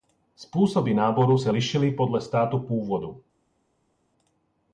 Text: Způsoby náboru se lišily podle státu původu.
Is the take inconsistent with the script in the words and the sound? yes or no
no